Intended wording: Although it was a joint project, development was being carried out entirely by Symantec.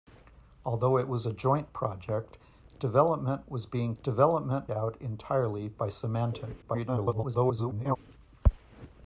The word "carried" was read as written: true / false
false